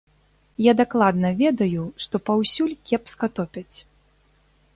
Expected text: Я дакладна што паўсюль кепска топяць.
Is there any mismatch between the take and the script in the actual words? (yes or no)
yes